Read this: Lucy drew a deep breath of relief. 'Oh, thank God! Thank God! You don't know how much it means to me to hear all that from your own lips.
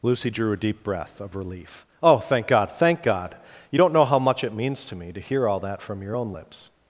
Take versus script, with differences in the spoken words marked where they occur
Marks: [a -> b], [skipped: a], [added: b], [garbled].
Lucy drew a deep breath of relief. 'Oh, thank God! Thank God! You don't know how much it means to me to hear all that from your own lips.